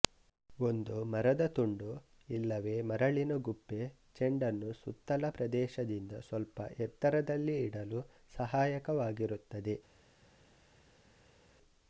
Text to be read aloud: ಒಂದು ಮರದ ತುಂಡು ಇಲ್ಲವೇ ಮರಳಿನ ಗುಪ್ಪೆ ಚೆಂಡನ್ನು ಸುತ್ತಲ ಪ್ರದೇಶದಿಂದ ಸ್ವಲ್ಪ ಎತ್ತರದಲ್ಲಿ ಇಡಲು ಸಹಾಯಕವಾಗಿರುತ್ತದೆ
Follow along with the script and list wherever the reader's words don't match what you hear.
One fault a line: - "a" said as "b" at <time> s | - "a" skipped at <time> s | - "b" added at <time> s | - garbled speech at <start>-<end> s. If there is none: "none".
none